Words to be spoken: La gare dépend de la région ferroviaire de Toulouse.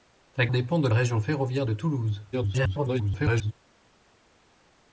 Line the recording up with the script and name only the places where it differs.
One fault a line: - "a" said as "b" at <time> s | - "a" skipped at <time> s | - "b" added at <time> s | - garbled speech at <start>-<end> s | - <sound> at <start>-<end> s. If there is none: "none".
- "gare" skipped at 0.5 s
- "la" skipped at 0.9 s
- garbled speech at 2.3-3.5 s